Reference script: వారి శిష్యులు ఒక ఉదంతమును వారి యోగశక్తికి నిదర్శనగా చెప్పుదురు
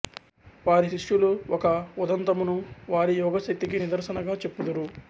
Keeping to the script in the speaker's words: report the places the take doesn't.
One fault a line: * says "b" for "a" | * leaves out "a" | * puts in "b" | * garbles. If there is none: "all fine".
all fine